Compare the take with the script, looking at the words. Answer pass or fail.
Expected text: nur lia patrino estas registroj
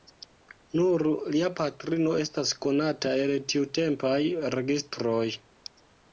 fail